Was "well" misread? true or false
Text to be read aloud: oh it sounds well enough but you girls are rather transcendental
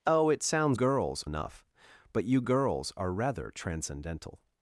true